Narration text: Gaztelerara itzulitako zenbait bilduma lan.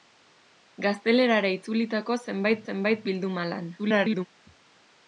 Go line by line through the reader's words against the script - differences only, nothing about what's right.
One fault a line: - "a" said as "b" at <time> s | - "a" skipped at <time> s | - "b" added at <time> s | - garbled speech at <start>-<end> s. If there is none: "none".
- "zenbait" added at 2.7 s
- garbled speech at 3.8-4.3 s